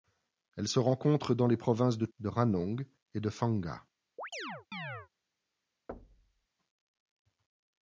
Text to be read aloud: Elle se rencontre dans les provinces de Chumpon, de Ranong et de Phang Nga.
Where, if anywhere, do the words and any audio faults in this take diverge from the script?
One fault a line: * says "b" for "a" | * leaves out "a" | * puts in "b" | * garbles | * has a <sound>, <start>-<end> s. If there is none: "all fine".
* leaves out "Chumpon"
* has a chirp, 4.2-5.1 s
* has a thud, 5.9-6.5 s